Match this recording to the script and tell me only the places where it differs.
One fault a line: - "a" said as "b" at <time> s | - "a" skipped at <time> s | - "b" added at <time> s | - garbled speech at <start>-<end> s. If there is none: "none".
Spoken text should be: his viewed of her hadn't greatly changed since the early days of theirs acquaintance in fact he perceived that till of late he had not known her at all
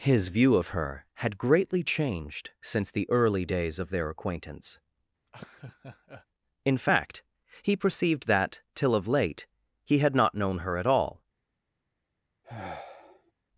- "viewed" said as "view" at 0.3 s
- "hadn't" said as "had" at 1.2 s
- "theirs" said as "their" at 3.9 s